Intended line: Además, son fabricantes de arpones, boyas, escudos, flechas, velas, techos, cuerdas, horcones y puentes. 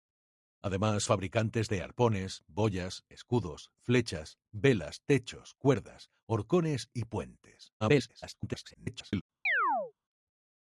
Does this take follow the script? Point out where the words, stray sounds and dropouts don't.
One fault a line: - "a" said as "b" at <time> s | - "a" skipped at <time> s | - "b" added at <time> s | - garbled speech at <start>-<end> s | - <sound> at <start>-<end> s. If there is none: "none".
- "son" skipped at 1.0 s
- garbled speech at 7.8-9.2 s
- chirp at 9.5-9.9 s